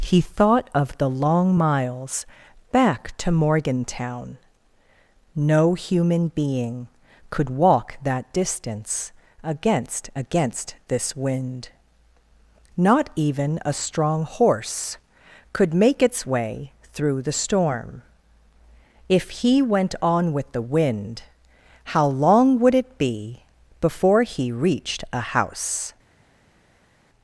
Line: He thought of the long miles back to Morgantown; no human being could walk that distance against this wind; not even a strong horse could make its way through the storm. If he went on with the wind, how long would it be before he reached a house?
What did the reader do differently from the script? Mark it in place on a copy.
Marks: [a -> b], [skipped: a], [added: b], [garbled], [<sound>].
He thought of the long miles back to Morgantown; no human being could walk that distance against [added: against] this wind; not even a strong horse could make its way through the storm. If he went on with the wind, how long would it be before he reached a house?